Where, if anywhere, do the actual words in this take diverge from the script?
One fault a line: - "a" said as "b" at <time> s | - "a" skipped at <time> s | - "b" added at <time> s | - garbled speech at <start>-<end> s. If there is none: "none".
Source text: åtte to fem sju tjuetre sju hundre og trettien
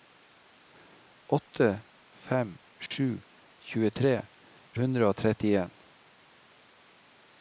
- "to" skipped at 1.8 s
- "sju" skipped at 4.2 s